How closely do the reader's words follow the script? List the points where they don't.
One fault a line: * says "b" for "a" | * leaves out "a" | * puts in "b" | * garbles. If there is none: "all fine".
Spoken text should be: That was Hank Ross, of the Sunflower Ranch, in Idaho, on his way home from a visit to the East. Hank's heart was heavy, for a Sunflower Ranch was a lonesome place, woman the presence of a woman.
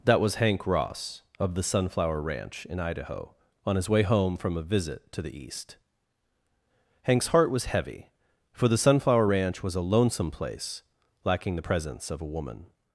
* says "the" for "a"
* says "lacking" for "woman"